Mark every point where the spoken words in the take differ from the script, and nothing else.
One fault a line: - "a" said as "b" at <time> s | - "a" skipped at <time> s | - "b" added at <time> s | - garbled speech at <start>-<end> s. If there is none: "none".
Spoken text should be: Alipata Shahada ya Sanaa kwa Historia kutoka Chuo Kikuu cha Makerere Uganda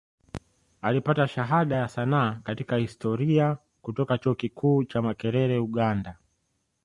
- "kwa" said as "katika" at 2.4 s